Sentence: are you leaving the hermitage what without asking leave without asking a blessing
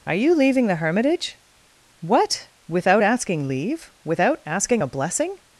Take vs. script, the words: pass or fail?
pass